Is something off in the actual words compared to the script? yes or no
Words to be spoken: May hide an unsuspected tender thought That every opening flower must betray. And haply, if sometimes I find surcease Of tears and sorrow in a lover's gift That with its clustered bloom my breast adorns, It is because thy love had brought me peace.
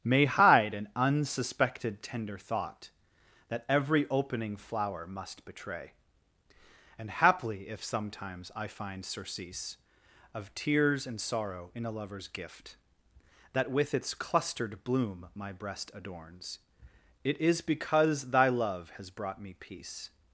yes